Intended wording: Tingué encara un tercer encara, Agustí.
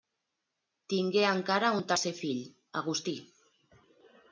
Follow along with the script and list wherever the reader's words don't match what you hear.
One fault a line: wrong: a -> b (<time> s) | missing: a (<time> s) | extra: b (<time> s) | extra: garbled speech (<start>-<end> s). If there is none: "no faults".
wrong: encara -> fill (2.2 s)